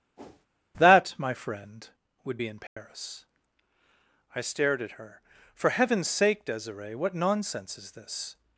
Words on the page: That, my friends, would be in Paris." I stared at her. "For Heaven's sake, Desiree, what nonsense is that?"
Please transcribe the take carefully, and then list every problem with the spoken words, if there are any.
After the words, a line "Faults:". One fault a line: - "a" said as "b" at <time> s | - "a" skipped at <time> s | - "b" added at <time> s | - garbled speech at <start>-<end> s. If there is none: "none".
That, my friend, would be in Paris." I stared at her. "For Heaven's sake, Desiree, what nonsense is this?"
Faults:
- "friends" said as "friend" at 1.3 s
- "that" said as "this" at 7.9 s